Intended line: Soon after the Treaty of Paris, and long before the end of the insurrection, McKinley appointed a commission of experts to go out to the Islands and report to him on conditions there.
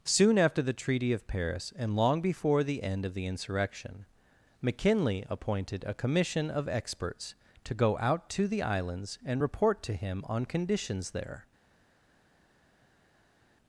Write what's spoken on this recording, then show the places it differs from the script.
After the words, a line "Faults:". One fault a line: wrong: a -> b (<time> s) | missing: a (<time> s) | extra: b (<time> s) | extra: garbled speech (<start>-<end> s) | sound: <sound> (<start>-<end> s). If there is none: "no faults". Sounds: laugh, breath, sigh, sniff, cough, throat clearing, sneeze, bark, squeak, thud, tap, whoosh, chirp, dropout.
Soon after the Treaty of Paris, and long before the end of the insurrection, McKinley appointed a commission of experts to go out to the Islands and report to him on conditions there.
Faults:
no faults